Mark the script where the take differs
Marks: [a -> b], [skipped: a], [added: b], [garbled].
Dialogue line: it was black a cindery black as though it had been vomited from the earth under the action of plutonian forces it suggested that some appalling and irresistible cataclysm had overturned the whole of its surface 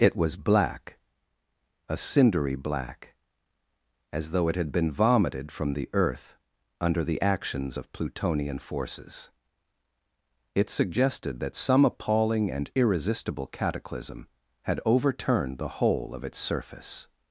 it was black a cindery black as though it had been vomited from the earth under the [action -> actions] of plutonian forces it suggested that some appalling and irresistible cataclysm had overturned the whole of its surface